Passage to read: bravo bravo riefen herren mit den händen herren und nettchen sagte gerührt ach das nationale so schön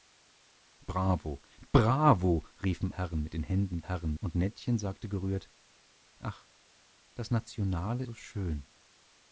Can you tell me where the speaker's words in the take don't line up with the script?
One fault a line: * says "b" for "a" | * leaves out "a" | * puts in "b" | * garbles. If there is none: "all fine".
all fine